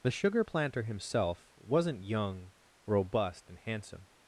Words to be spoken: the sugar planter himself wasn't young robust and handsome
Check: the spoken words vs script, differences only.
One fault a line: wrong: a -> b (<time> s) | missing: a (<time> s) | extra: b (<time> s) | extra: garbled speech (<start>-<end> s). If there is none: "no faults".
no faults